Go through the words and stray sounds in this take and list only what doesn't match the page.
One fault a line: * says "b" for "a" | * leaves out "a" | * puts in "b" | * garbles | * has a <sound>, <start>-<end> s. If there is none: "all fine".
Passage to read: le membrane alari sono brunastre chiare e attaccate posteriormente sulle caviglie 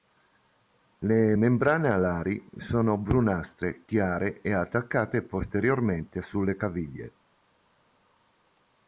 all fine